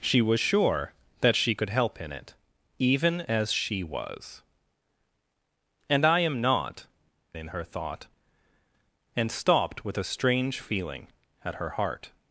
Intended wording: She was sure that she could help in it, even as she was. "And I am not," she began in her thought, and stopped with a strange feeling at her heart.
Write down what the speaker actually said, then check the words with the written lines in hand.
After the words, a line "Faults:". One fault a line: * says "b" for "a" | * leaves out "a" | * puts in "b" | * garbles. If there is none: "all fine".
She was sure that she could help in it, even as she was. "And I am not," in her thought, and stopped with a strange feeling at her heart.
Faults:
* leaves out "she began"